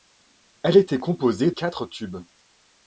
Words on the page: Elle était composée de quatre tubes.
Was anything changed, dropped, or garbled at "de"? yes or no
yes